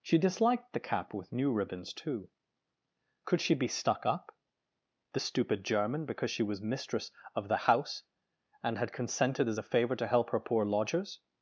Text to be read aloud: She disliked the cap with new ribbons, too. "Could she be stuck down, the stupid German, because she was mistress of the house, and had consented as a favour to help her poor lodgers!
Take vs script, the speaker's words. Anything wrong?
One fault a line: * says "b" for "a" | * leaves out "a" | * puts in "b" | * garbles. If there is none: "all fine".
* says "up" for "down"